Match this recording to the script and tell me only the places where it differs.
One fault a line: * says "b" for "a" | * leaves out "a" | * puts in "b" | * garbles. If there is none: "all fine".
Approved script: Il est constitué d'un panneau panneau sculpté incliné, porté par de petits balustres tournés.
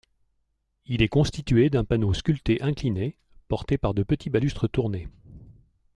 * leaves out "panneau"